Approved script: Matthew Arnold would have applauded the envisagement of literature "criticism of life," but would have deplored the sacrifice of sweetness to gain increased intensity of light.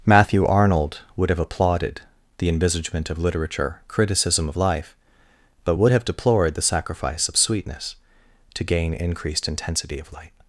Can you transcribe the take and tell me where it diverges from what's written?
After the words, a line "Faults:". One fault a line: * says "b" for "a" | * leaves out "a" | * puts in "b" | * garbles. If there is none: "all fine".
Matthew Arnold would have applauded the envisagement of literature "criticism of life," but would have deplored the sacrifice of sweetness to gain increased intensity of light.
Faults:
all fine